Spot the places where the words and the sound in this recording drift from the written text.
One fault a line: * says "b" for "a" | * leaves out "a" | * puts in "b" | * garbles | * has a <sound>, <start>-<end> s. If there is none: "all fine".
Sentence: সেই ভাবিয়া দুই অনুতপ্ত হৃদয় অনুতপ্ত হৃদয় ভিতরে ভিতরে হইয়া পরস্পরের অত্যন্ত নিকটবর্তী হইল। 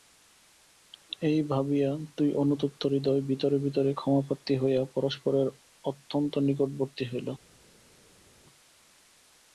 * says "এই" for "সেই"
* says "ভিতরে" for "অনুতপ্ত হৃদয়"
* says "ক্ষমাপ্রার্থী" for "ভিতরে"